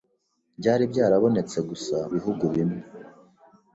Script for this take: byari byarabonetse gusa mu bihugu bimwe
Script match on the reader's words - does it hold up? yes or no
no